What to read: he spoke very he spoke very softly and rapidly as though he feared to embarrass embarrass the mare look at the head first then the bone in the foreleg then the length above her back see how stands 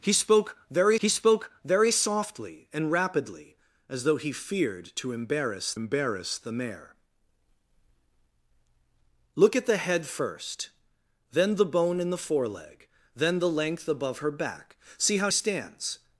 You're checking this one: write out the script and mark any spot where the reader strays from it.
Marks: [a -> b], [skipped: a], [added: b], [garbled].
he spoke very he spoke very softly and rapidly as though he feared to embarrass embarrass the mare look at the head first then the bone in the foreleg then the length above her back see how stands